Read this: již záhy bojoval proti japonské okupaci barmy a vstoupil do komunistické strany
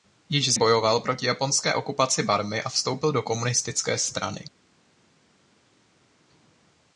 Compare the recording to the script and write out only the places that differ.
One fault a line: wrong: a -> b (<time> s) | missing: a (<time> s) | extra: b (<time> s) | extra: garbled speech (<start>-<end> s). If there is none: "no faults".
missing: záhy (0.5 s)